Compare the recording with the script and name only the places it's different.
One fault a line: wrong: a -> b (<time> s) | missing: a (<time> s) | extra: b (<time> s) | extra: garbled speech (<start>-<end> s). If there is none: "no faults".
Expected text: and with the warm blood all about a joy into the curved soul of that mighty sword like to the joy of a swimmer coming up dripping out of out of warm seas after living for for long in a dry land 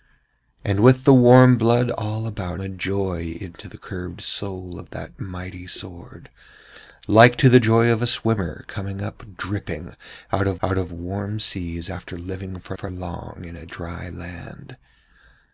no faults